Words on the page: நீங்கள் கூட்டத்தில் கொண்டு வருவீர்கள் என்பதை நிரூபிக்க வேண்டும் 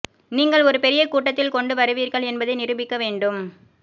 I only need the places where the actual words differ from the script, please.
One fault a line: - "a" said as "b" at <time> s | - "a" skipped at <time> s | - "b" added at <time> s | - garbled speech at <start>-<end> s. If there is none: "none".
- "ஒரு பெரிய" added at 0.6 s